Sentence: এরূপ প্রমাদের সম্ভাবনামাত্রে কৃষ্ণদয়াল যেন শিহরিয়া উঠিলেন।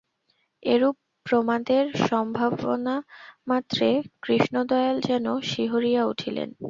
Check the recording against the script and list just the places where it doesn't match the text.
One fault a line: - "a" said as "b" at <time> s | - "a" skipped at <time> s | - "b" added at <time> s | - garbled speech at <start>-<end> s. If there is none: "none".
none